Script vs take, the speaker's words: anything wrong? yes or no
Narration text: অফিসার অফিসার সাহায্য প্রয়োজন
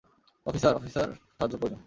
no